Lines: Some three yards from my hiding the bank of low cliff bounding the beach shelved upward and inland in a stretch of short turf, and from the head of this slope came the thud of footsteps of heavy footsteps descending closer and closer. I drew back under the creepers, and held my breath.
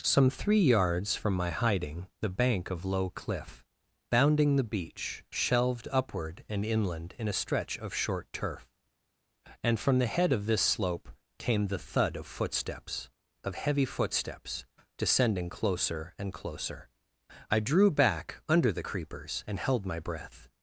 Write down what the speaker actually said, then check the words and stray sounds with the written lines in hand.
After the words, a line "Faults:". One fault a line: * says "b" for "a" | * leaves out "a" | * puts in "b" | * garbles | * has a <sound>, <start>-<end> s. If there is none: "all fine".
Some three yards from my hiding the bank of low cliff bounding the beach shelved upward and inland in a stretch of short turf, and from the head of this slope came the thud of footsteps of heavy footsteps descending closer and closer. I drew back under the creepers, and held my breath.
Faults:
all fine